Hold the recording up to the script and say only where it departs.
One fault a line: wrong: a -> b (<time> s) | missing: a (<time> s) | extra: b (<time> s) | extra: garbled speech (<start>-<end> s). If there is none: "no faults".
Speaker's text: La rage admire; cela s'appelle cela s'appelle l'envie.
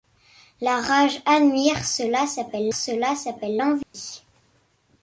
no faults